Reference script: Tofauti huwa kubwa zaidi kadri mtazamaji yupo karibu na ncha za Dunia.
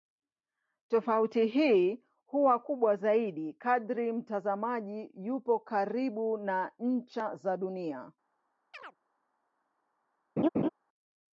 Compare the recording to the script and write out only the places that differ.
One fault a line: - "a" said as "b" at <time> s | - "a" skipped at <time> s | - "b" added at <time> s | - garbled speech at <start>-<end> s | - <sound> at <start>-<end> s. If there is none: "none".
- "hii" added at 1.4 s
- chirp at 8.7-9.0 s
- laugh at 10.4-10.7 s